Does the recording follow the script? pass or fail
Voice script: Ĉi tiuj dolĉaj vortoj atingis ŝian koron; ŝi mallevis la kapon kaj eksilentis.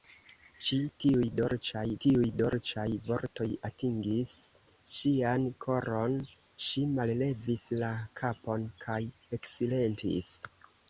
fail